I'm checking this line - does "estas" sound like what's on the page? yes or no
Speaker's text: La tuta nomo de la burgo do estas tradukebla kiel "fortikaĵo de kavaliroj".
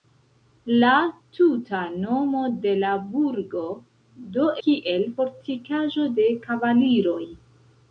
no